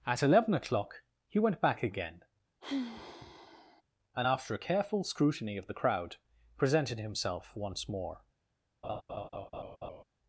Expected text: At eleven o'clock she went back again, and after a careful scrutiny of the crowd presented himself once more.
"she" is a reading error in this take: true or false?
true